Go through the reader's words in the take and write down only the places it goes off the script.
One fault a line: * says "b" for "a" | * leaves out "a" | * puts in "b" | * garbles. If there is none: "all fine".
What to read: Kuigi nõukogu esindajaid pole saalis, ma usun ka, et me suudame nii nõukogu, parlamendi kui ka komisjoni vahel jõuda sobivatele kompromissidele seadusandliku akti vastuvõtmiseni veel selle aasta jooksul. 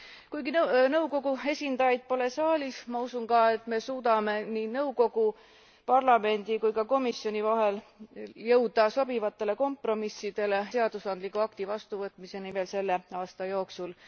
all fine